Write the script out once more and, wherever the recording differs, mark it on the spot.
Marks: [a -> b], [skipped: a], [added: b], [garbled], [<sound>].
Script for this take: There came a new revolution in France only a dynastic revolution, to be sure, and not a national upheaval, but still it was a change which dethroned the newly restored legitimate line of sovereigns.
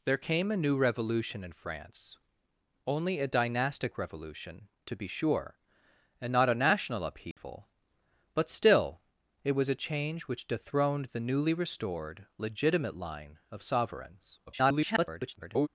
There came a new revolution in France only a dynastic revolution, to be sure, and not a national upheaval, [dropout] but still it was a change which dethroned the newly restored legitimate line of sovereigns. [garbled]